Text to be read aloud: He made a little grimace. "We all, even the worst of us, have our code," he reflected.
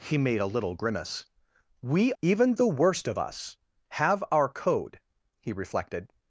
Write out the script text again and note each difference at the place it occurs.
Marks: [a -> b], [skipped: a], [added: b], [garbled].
He made a little grimace. "We [skipped: all,] even the worst of us, have our code," he reflected.